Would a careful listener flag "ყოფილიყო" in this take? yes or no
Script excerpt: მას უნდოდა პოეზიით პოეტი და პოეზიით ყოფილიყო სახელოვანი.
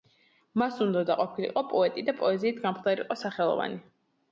yes